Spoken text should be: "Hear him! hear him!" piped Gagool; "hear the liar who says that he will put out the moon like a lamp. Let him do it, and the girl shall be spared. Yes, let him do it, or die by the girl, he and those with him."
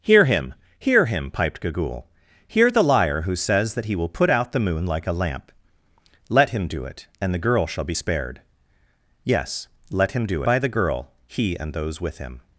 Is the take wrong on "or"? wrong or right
wrong